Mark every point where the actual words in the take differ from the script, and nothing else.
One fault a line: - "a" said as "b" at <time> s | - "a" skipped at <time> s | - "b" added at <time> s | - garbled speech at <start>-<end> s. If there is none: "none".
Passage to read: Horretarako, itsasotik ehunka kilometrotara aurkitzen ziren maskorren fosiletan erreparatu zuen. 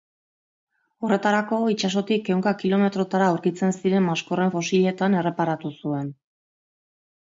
none